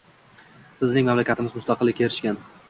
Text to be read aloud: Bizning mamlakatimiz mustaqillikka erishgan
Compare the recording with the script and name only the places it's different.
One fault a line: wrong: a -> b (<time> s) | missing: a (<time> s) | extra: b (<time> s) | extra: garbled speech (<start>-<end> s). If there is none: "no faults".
no faults